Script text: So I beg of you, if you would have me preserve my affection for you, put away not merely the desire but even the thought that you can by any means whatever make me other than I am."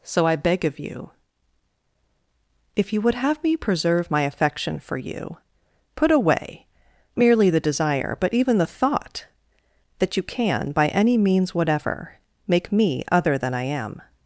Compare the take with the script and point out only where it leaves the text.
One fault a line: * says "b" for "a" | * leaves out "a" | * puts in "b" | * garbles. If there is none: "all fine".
* leaves out "not"